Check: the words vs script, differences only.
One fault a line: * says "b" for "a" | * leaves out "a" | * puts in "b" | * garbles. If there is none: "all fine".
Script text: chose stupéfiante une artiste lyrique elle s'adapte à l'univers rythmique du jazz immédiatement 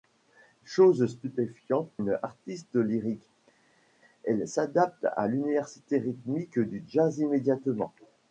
all fine